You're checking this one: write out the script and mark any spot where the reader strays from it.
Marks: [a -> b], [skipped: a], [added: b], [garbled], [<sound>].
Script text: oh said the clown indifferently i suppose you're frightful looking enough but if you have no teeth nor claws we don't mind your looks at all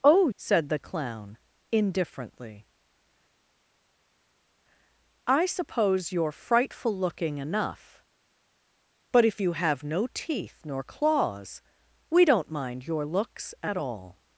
oh said the clown indifferently i suppose you're frightful looking enough but if you have no teeth nor claws we don't mind your looks at all